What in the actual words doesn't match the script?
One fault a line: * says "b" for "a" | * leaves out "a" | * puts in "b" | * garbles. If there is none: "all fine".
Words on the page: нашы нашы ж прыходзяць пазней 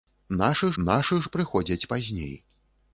all fine